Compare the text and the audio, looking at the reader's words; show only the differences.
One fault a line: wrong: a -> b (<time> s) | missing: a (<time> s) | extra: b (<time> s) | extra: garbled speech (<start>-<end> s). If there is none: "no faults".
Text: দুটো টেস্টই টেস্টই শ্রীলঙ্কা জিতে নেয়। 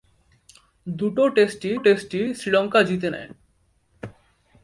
no faults